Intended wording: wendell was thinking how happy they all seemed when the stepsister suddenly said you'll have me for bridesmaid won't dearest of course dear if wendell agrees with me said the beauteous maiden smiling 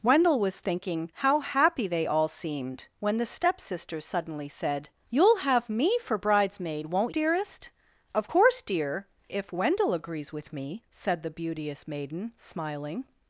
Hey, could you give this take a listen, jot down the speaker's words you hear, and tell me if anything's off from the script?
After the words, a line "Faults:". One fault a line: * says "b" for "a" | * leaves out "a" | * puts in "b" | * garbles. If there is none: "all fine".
wendell was thinking how happy they all seemed when the stepsister suddenly said you'll have me for bridesmaid won't dearest of course dear if wendell agrees with me said the beauteous maiden smiling
Faults:
all fine